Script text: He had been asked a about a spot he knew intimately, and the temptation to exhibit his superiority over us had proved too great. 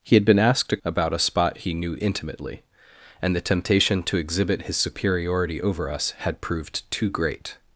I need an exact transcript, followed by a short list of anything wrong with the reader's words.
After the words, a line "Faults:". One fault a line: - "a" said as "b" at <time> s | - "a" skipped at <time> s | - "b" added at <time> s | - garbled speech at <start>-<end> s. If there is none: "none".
He had been asked a about a spot he knew intimately, and the temptation to exhibit his superiority over us had proved too great.
Faults:
none